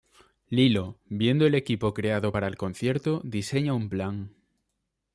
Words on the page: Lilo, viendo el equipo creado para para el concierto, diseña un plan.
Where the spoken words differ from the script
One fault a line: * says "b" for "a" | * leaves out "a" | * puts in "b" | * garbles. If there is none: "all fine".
* leaves out "para"